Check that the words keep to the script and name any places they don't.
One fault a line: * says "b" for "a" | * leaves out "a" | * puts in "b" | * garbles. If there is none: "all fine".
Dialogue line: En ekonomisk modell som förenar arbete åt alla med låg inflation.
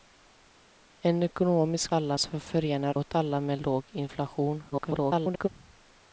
* says "alla" for "modell"
* leaves out "arbete"
* garbles